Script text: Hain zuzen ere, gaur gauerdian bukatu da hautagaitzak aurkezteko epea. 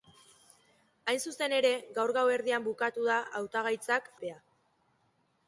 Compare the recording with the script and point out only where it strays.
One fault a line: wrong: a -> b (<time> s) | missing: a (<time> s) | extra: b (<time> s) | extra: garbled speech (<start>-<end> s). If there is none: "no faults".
missing: aurkezteko (4.1 s)